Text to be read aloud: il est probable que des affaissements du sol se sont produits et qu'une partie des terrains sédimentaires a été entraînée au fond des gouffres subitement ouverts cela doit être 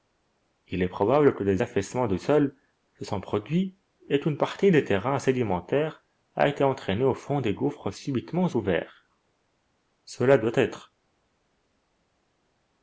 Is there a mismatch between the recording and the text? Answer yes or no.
no